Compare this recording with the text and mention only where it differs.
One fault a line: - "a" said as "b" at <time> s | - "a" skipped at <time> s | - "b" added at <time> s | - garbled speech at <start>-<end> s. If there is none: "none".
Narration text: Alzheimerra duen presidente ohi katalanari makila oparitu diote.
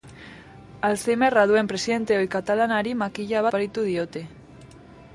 none